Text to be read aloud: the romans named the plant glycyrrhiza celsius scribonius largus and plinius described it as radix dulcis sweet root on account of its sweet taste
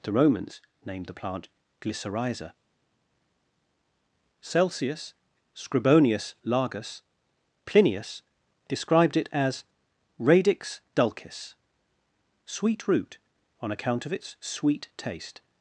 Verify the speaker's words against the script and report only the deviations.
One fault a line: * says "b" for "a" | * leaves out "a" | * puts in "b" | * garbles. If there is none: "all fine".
* leaves out "and"